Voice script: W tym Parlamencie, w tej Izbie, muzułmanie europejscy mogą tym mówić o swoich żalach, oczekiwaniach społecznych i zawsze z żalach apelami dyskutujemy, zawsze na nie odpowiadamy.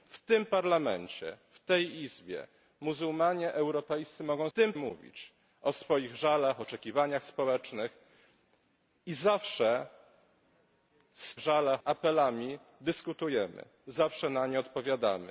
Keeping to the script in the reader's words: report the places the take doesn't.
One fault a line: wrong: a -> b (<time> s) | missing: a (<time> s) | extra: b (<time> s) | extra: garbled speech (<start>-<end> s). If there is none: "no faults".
no faults